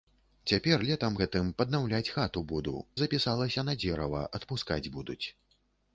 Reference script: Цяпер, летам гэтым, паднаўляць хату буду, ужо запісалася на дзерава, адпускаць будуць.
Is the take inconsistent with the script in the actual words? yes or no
yes